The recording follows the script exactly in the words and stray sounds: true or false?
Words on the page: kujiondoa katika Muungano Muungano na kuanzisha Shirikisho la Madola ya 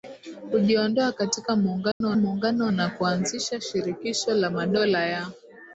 false